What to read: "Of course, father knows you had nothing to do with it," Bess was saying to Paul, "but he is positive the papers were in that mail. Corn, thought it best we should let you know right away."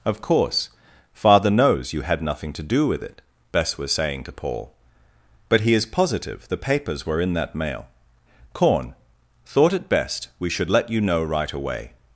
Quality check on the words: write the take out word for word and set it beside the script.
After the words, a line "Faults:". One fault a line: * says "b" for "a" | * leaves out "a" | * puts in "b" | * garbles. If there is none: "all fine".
"Of course, father knows you had nothing to do with it," Bess was saying to Paul, "but he is positive the papers were in that mail. Corn, thought it best we should let you know right away."
Faults:
all fine